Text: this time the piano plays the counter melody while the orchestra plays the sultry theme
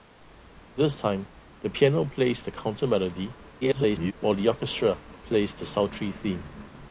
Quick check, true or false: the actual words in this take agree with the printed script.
false